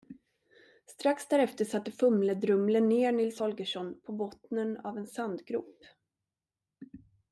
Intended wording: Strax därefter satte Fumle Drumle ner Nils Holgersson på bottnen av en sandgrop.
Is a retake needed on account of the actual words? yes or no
no